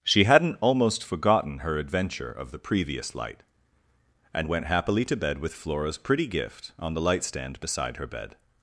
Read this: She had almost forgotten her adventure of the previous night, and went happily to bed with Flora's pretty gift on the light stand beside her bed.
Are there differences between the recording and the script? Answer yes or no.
yes